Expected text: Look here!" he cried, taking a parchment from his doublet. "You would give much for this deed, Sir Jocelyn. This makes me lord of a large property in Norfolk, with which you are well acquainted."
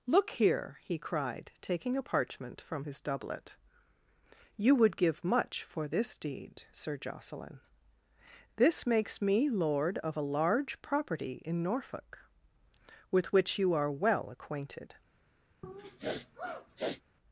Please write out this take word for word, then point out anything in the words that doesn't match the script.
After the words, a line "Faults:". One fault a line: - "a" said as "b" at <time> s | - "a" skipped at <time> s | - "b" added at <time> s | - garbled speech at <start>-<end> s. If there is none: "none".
Look here!" he cried, taking a parchment from his doublet. "You would give much for this deed, Sir Jocelyn. This makes me lord of a large property in Norfolk, with which you are well acquainted."
Faults:
none